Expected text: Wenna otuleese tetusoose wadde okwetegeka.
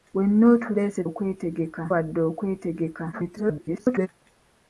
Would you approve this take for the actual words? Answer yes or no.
no